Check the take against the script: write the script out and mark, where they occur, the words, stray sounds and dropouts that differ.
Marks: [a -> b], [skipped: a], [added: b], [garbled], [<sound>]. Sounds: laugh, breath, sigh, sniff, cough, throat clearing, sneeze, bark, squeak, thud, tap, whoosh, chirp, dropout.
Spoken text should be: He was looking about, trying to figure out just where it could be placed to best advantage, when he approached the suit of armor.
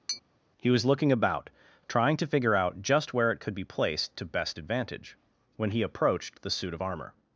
[tap] He was looking about, trying to figure out just where it could be placed to best advantage, when he approached the suit of armor.